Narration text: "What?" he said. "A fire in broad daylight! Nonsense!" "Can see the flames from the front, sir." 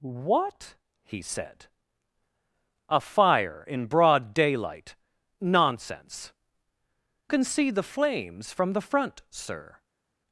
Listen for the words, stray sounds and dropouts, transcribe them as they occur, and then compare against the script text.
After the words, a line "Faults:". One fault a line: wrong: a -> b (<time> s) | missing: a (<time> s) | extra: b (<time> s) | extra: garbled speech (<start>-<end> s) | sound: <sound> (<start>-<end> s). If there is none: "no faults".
"What?" he said. "A fire in broad daylight! Nonsense!" "Can see the flames from the front, sir."
Faults:
no faults